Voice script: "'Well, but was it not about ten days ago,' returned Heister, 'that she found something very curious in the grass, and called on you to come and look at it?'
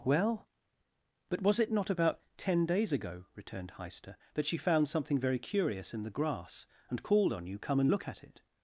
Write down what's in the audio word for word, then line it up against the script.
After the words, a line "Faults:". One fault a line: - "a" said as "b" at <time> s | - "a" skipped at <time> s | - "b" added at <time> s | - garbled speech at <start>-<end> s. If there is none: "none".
"'Well, but was it not about ten days ago,' returned Heister, 'that she found something very curious in the grass, and called on you come and look at it?'
Faults:
- "to" skipped at 7.6 s